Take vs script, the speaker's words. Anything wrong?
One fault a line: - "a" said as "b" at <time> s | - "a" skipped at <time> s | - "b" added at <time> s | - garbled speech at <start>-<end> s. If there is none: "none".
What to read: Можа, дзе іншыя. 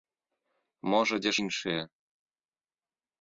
none